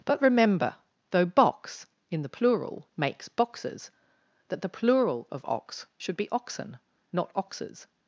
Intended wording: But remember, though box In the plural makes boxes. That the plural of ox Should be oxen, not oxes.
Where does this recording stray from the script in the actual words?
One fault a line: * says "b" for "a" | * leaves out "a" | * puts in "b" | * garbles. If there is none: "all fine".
all fine